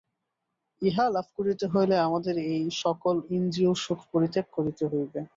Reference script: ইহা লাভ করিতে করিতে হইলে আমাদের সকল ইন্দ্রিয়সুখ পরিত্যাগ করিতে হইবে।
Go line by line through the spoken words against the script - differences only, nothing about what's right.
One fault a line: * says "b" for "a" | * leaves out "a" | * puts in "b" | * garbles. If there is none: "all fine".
* leaves out "করিতে"
* puts in "এই"